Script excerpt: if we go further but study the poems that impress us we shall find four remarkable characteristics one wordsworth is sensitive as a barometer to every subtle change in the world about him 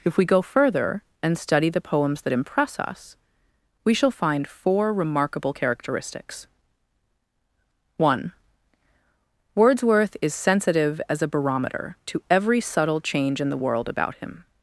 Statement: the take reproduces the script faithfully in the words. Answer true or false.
false